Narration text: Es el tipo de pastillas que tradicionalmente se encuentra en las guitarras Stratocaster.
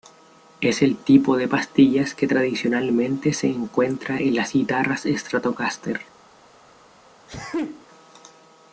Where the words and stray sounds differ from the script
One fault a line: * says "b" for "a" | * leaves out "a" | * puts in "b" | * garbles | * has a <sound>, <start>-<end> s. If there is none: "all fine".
* has a sneeze, 7.3-7.9 s